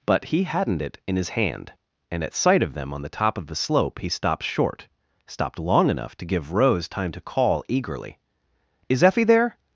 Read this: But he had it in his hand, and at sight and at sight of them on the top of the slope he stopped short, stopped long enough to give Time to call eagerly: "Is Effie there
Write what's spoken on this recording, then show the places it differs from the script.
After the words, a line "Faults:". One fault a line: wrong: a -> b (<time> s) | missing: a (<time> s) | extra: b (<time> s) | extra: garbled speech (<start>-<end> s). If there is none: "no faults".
But he hadn't it in his hand, and at sight of them on the top of the slope he stopped short, stopped long enough to give Rose time to call eagerly: "Is Effie there
Faults:
wrong: had -> hadn't (0.4 s)
missing: and at sight (2.6 s)
extra: Rose (6.5 s)